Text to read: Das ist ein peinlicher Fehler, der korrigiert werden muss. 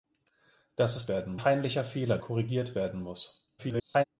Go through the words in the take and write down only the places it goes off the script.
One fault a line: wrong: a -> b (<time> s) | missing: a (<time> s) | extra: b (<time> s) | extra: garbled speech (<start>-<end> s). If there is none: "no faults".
wrong: ein -> werden (1.1 s)
missing: der (2.2 s)
extra: garbled speech (3.6-4.0 s)